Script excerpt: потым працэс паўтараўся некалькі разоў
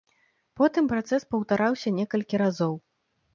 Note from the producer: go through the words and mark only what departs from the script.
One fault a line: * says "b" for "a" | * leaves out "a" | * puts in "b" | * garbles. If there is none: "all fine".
all fine